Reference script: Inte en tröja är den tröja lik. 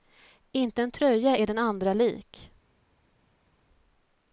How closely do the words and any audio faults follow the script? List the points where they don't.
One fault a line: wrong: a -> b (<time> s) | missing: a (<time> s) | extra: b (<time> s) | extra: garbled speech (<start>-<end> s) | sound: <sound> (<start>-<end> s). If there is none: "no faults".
wrong: tröja -> andra (1.6 s)